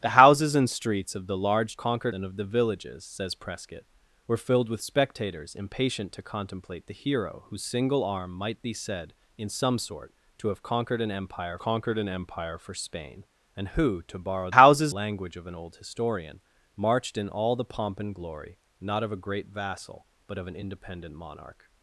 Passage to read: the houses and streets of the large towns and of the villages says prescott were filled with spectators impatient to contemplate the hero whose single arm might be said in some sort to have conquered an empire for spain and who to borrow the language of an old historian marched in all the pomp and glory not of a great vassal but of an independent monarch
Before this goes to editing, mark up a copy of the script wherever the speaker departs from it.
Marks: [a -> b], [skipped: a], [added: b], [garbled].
the houses and streets of the large [towns -> conquered] and of the villages says prescott were filled with spectators impatient to contemplate the hero whose single arm might be said in some sort to have conquered an empire [added: conquered an empire] for spain and who to borrow [the -> houses] language of an old historian marched in all the pomp and glory not of a great vassal but of an independent monarch